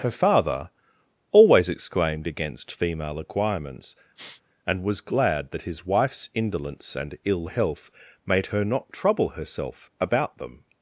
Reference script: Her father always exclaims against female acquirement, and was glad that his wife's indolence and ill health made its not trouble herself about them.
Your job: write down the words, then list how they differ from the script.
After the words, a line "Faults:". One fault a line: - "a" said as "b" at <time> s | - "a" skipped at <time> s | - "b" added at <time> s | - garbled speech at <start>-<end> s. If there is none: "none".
Her father always exclaimed against female acquirements, and was glad that his wife's indolence and ill health made her not trouble herself about them.
Faults:
- "exclaims" said as "exclaimed" at 1.7 s
- "acquirement" said as "acquirements" at 3.2 s
- "its" said as "her" at 8.5 s